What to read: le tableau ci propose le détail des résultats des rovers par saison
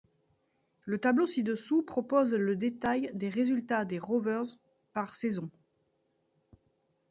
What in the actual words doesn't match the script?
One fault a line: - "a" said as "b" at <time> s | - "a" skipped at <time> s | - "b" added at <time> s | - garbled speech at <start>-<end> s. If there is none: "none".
- "dessous" added at 1.4 s